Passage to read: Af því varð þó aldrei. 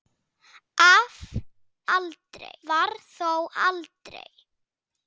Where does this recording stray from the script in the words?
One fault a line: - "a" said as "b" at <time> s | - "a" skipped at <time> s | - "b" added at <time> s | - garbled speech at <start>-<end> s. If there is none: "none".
- "því" said as "aldrei" at 2.0 s